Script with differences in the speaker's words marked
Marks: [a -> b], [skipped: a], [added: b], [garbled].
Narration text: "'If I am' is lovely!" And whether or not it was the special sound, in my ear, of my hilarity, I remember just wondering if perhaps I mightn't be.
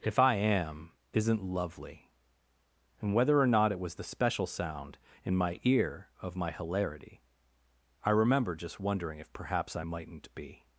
"'If I am' [is -> isn't] lovely!" And whether or not it was the special sound, in my ear, of my hilarity, I remember just wondering if perhaps I mightn't be.